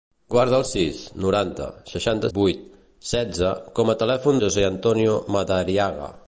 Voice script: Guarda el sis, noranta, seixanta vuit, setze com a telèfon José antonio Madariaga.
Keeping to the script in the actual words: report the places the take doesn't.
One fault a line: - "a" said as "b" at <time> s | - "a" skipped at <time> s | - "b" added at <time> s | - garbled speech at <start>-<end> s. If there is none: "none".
none